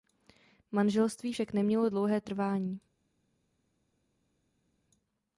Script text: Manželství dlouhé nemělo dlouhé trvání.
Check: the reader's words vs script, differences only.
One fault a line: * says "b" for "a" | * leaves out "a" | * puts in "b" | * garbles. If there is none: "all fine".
* says "však" for "dlouhé"